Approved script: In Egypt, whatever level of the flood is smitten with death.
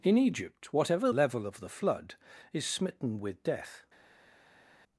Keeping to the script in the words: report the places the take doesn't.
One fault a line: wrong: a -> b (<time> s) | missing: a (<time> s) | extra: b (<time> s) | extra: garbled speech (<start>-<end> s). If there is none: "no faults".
no faults